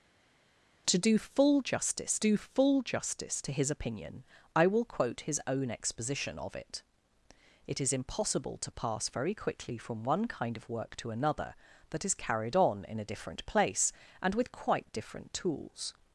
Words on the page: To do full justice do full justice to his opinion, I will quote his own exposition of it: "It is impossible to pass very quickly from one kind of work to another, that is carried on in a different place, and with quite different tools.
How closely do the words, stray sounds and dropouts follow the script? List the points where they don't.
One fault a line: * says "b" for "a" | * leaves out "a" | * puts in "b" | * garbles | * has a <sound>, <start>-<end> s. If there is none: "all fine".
all fine